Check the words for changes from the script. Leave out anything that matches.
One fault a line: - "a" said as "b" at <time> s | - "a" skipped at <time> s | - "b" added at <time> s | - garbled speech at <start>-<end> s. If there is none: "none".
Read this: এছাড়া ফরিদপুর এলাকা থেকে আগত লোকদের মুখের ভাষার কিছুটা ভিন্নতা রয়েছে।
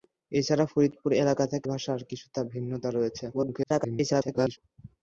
- "আগত লোকদের মুখের" skipped at 1.7 s
- garbled speech at 3.3-4.6 s